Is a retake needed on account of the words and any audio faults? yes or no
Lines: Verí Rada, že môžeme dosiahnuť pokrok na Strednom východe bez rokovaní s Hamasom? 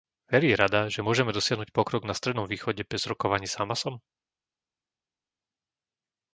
no